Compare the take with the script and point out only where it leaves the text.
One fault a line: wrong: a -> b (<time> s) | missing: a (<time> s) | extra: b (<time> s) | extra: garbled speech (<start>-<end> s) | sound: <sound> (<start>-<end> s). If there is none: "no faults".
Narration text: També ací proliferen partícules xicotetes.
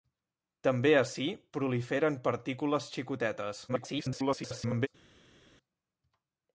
extra: garbled speech (3.7-4.9 s)